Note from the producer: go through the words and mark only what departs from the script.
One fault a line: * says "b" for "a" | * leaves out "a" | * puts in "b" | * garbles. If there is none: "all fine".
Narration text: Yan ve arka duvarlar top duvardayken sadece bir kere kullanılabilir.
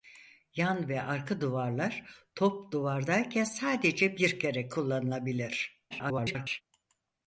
* garbles